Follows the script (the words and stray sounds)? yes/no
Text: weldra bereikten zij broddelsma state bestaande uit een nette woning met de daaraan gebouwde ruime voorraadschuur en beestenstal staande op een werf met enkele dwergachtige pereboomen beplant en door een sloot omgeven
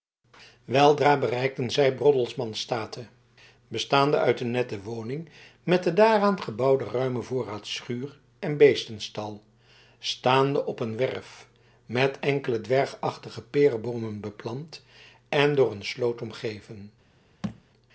no